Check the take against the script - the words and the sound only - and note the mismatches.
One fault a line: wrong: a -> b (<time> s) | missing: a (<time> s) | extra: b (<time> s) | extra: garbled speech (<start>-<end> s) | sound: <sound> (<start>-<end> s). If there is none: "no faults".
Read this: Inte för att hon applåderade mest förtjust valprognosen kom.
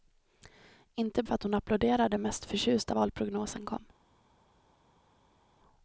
no faults